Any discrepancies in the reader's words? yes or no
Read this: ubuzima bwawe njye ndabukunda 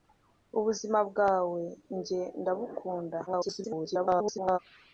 yes